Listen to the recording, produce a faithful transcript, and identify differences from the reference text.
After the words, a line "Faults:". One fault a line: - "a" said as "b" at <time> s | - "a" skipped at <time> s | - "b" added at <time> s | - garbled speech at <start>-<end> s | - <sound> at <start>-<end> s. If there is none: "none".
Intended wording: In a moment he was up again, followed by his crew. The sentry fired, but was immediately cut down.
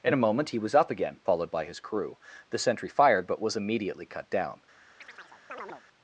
In a moment he was up again, followed by his crew. The sentry fired, but was immediately cut down.
Faults:
- chirp at 5.0-5.8 s